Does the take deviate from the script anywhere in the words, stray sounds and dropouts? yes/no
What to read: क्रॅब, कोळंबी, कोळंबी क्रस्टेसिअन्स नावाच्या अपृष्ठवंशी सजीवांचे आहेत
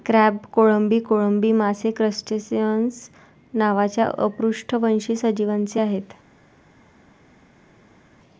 yes